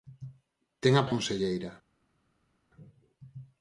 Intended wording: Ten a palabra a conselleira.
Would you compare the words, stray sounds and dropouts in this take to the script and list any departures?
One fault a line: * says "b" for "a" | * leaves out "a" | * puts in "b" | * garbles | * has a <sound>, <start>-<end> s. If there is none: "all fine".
* leaves out "palabra"